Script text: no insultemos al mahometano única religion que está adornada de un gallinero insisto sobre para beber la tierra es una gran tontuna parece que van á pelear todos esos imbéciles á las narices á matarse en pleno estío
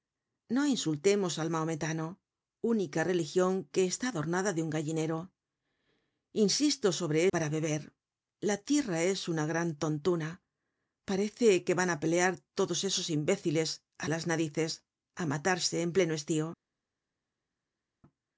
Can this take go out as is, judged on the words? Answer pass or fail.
pass